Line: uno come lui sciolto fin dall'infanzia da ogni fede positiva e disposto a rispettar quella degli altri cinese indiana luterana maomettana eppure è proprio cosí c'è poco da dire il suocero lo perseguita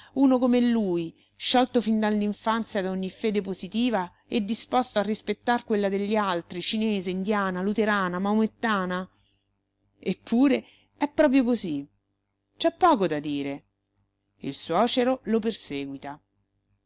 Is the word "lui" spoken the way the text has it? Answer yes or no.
yes